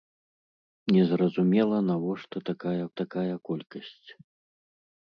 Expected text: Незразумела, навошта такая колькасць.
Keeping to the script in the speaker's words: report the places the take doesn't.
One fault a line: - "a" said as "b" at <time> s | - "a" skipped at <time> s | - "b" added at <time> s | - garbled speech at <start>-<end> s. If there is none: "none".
- "такая" added at 3.0 s